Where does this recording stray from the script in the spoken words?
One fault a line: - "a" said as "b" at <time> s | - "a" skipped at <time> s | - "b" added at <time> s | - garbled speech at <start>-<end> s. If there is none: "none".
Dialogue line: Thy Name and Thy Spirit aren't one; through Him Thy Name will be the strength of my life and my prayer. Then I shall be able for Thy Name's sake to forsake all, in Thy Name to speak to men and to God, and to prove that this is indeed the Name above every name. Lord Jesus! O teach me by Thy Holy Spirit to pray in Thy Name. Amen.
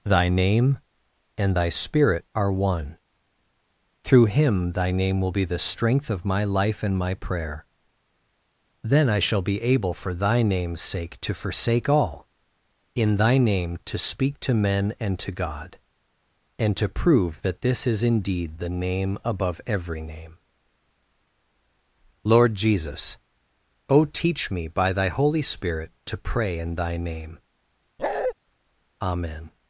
- "aren't" said as "are" at 2.3 s